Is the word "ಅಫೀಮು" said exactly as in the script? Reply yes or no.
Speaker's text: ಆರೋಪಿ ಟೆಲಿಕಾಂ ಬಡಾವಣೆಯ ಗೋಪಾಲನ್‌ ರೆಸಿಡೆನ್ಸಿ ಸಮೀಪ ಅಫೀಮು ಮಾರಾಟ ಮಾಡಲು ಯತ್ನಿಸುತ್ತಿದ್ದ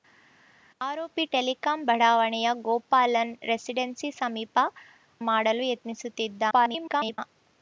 no